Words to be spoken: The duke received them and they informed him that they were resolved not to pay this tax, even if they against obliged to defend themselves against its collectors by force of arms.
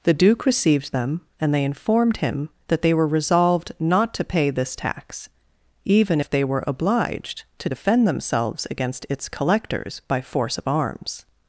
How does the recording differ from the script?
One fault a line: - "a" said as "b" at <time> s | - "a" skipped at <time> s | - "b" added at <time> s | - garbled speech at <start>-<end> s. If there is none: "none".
- "against" said as "were" at 6.4 s